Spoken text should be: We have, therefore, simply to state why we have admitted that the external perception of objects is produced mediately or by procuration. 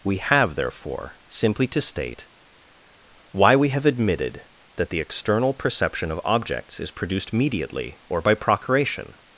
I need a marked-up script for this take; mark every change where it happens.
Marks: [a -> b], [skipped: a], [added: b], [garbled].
We have, therefore, simply to state why we have admitted that the external perception of objects is produced mediately or by procuration.